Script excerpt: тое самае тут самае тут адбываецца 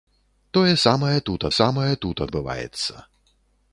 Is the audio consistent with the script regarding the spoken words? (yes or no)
yes